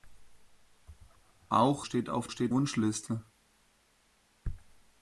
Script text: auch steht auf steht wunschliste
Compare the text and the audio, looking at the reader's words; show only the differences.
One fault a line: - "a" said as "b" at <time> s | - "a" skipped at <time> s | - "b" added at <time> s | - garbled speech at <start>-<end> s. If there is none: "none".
none